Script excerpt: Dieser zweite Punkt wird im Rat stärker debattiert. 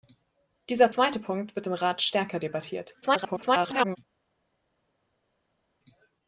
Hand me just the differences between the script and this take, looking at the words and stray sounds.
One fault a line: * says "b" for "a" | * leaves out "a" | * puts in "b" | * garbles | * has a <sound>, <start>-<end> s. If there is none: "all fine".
* garbles